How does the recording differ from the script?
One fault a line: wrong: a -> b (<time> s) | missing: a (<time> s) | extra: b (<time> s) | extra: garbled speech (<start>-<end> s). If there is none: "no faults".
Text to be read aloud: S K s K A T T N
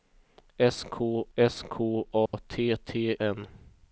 no faults